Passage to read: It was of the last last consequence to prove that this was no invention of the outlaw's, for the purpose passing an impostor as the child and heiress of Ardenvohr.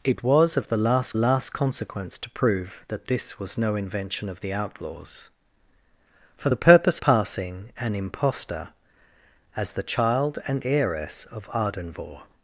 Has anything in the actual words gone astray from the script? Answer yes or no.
no